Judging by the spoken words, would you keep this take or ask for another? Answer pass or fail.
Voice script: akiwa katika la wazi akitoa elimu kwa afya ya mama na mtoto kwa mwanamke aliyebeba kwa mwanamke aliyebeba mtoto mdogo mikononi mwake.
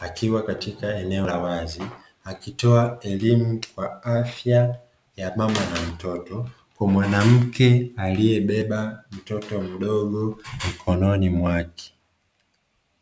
fail